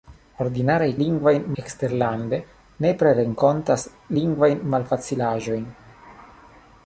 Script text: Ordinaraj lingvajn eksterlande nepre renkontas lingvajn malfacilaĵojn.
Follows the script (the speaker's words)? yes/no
yes